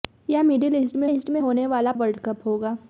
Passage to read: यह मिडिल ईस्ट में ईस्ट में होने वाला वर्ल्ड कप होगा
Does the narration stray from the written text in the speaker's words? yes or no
no